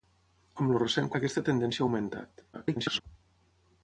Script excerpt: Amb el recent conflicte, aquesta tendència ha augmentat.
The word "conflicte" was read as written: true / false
false